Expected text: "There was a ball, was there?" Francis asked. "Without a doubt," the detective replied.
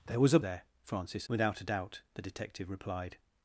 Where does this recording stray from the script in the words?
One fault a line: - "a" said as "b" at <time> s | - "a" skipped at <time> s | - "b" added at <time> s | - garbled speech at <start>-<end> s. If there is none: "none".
- "ball was" skipped at 0.4 s
- "asked" skipped at 1.3 s